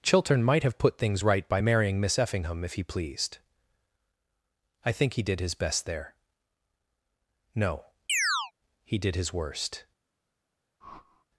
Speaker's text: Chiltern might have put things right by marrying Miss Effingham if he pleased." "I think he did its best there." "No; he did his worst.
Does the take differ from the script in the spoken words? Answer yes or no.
yes